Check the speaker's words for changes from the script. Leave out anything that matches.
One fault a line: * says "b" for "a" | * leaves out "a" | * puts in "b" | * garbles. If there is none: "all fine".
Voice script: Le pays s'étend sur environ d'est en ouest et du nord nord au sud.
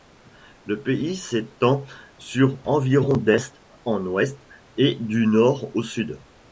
* leaves out "nord"